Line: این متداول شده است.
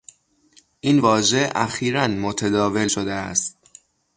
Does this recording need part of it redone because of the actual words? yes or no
yes